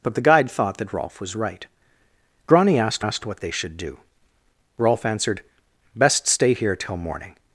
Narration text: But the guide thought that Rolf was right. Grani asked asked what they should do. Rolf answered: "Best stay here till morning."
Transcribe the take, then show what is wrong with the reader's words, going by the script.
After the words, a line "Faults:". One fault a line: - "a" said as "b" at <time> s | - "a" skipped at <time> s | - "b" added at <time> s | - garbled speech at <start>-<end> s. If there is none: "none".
But the guide thought that Rolf was right. Grani asked asked what they should do. Rolf answered: "Best stay here till morning."
Faults:
none